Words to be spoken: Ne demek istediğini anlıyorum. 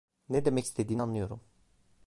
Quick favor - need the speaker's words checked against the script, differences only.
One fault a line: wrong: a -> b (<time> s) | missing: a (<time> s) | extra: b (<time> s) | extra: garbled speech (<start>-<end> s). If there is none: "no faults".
no faults